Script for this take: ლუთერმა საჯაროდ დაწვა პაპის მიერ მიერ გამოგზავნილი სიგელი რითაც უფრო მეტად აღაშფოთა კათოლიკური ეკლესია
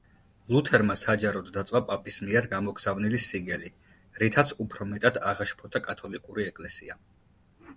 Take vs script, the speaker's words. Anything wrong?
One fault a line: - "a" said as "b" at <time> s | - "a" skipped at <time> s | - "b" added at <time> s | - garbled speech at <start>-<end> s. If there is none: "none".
- "მიერ" skipped at 2.5 s